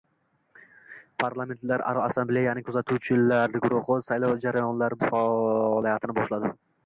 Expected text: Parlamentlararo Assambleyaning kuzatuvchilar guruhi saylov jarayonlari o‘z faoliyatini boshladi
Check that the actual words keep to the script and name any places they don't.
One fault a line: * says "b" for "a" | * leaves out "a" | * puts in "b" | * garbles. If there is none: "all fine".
all fine